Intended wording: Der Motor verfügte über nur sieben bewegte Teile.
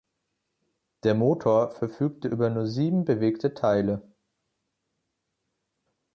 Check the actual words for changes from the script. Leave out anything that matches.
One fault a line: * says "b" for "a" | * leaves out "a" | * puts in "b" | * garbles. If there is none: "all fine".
all fine